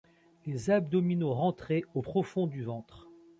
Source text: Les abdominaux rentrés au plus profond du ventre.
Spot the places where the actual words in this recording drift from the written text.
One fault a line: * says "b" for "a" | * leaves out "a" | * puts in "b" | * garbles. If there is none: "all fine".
* leaves out "plus"